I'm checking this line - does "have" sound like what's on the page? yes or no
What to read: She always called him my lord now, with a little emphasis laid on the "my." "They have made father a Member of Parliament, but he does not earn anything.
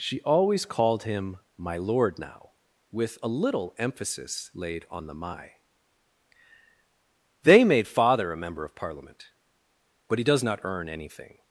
no